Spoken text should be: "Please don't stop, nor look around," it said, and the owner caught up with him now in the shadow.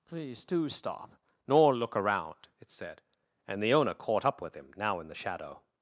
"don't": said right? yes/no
no